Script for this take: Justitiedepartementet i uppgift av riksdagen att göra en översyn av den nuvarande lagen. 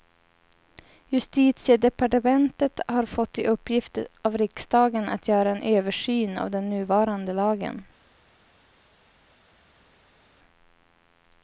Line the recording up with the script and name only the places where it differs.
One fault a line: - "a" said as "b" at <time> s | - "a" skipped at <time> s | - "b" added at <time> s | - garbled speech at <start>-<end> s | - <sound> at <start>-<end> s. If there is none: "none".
- "har fått" added at 2.9 s